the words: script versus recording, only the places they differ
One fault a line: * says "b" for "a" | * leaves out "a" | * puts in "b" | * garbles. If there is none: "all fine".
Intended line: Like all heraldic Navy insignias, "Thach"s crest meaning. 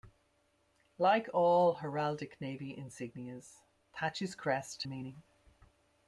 all fine